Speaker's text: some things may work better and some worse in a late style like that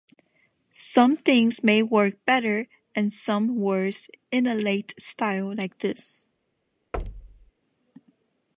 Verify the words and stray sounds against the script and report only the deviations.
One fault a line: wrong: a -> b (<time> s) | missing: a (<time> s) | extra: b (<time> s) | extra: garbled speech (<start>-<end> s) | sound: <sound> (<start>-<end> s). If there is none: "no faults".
wrong: that -> this (5.8 s)
sound: thud (6.9-7.5 s)